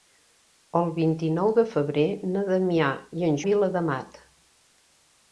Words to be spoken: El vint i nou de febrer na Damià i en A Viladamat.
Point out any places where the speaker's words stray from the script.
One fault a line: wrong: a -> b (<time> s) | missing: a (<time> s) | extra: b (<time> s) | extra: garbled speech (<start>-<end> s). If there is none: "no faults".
no faults